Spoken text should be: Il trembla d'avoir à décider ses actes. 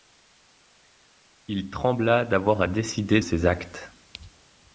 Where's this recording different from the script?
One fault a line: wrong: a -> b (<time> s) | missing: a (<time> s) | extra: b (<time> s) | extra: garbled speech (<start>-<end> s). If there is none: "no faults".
no faults